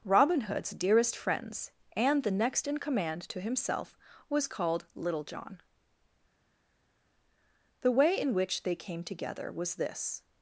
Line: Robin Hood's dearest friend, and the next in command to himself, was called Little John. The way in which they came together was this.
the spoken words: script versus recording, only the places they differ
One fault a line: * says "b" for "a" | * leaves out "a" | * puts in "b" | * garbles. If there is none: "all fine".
* says "friends" for "friend"